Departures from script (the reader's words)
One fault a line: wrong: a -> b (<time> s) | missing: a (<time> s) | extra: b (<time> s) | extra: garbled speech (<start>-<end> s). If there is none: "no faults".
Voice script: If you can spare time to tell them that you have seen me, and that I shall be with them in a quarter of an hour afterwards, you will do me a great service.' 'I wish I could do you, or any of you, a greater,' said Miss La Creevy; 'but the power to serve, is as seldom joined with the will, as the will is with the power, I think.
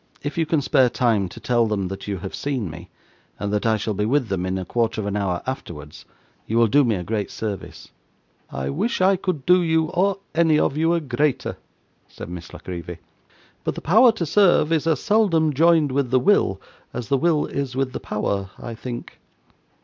no faults